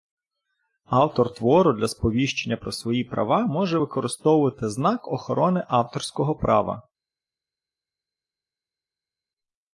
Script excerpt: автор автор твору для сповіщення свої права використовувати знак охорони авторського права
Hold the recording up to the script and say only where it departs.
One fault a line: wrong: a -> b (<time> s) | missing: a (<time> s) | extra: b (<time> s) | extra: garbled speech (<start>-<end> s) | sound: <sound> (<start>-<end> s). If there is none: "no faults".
missing: автор (1.3 s)
extra: про (2.5 s)
extra: може (3.5 s)